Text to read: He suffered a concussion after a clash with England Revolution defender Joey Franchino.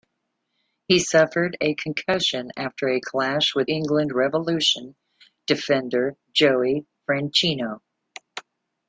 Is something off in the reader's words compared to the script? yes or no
no